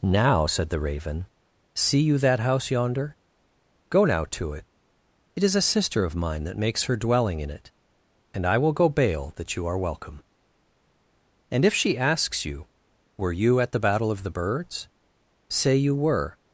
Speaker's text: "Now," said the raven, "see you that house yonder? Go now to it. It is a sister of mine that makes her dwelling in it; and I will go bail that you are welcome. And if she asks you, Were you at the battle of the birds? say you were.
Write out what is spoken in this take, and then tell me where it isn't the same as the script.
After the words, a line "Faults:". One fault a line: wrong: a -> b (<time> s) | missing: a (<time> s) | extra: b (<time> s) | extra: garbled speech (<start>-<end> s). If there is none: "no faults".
"Now," said the raven, "see you that house yonder? Go now to it. It is a sister of mine that makes her dwelling in it; and I will go bail that you are welcome. And if she asks you, Were you at the battle of the birds? say you were.
Faults:
no faults